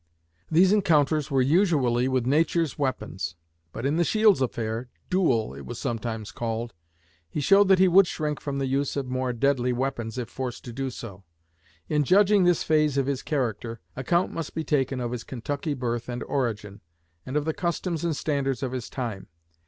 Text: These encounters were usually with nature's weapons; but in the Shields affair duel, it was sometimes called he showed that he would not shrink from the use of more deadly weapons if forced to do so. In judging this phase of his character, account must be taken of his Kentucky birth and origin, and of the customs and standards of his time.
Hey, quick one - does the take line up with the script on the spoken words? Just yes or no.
no